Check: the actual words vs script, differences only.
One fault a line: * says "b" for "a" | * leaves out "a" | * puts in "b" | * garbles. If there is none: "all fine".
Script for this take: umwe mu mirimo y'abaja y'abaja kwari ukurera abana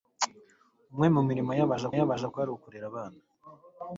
all fine